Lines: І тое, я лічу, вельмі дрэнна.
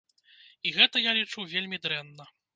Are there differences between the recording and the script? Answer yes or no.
yes